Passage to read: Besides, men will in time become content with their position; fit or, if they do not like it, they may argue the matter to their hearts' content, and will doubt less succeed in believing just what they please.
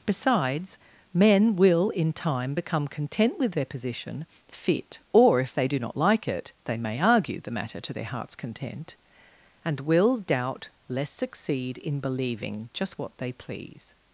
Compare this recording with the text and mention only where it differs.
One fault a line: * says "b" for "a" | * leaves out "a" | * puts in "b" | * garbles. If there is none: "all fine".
all fine